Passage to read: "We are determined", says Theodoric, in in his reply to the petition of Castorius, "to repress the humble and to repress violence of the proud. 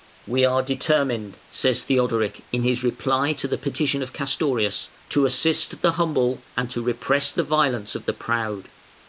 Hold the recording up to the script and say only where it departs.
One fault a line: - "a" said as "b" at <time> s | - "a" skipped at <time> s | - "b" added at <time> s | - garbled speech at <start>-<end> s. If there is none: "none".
- "in" skipped at 2.6 s
- "repress" said as "assist" at 5.2 s
- "the" added at 7.3 s